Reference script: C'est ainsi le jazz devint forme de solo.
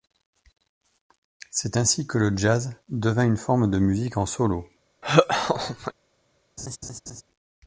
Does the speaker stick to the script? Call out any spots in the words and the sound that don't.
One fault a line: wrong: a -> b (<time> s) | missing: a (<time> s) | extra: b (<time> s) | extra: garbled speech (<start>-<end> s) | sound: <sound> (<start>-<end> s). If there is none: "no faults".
extra: que (2.1 s)
extra: une (3.2 s)
extra: musique en (3.8 s)
sound: laugh (5.0-5.9 s)
sound: laugh (6.6-7.2 s)